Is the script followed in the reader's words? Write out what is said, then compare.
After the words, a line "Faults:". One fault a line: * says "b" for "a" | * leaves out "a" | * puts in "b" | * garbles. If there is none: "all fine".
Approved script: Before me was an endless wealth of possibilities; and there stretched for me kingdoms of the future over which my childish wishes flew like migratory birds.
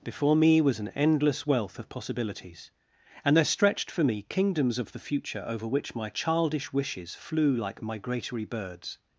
Before me was an endless wealth of possibilities; and there stretched for me kingdoms of the future over which my childish wishes flew like migratory birds.
Faults:
all fine